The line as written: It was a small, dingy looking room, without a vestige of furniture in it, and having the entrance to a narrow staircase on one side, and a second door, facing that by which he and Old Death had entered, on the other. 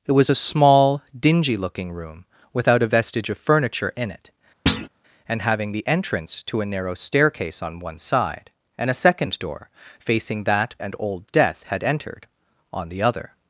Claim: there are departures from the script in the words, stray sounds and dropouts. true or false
true